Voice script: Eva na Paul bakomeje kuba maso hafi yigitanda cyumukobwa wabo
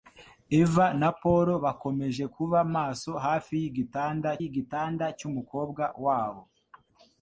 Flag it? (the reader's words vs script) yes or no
yes